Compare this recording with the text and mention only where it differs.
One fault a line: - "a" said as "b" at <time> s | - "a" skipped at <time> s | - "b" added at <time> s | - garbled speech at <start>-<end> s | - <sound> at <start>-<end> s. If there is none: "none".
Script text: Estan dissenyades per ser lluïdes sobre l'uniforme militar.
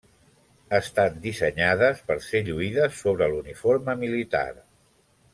none